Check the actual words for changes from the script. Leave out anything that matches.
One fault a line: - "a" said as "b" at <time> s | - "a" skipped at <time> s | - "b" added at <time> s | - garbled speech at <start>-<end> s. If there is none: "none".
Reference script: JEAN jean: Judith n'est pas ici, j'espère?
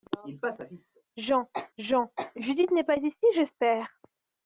none